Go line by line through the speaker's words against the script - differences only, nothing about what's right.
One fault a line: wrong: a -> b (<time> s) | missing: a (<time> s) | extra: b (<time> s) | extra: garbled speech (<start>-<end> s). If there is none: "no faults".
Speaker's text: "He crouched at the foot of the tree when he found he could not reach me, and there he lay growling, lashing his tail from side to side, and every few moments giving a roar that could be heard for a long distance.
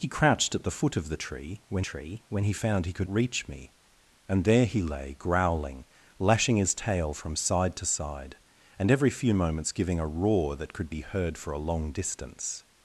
extra: tree when (1.8 s)
missing: not (3.1 s)